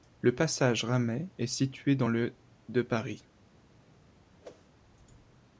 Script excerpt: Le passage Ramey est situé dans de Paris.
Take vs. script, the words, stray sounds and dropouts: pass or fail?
fail